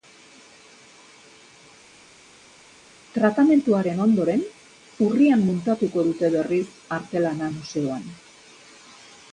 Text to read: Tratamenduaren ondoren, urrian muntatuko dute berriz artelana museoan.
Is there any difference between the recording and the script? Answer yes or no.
no